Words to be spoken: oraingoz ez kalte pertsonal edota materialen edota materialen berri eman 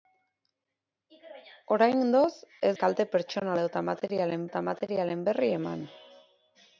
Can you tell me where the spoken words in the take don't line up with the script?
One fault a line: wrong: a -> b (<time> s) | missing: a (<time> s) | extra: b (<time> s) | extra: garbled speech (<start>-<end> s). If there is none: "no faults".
no faults